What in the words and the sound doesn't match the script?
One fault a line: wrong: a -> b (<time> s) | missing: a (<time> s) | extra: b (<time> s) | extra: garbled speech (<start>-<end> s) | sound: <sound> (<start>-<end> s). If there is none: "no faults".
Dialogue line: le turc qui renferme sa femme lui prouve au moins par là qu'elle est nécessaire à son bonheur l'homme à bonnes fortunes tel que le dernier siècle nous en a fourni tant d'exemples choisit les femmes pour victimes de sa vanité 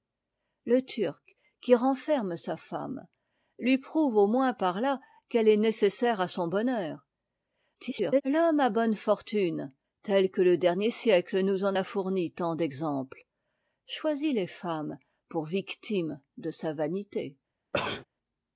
extra: garbled speech (7.7-8.2 s)
sound: sneeze (17.7-18.0 s)